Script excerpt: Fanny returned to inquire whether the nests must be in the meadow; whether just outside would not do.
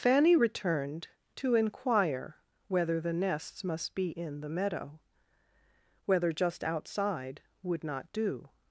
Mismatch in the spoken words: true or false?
false